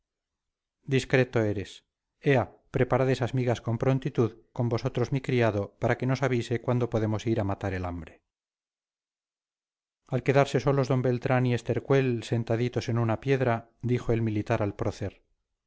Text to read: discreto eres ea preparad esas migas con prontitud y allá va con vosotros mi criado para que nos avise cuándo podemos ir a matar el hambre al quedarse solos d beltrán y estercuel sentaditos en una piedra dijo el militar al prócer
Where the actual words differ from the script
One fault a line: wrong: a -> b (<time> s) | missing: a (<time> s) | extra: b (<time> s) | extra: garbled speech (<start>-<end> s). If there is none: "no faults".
missing: y allá va (4.3 s)